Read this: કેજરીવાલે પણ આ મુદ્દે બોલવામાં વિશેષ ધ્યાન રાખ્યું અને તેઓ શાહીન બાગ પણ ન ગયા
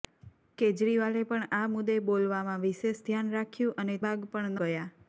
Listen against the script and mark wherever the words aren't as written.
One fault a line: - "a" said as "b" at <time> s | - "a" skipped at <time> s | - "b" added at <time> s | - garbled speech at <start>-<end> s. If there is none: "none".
- "તેઓ શાહીન" skipped at 4.0 s
- "ન" skipped at 4.6 s